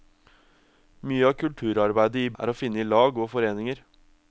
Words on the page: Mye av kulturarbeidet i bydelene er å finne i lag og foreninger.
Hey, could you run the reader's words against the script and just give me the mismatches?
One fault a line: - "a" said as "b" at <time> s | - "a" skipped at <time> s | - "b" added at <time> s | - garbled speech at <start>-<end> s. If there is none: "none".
- "bydelene" skipped at 2.3 s